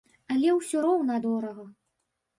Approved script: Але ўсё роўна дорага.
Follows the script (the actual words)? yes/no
yes